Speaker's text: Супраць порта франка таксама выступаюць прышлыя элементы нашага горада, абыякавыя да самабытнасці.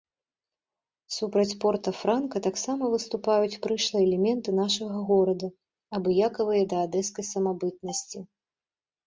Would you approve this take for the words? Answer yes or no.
no